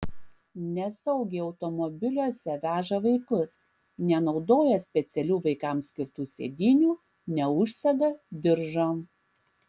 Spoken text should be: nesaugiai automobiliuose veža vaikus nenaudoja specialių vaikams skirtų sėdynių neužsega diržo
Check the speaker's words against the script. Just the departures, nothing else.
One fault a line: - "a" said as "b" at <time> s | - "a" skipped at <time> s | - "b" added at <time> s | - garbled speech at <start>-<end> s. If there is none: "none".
none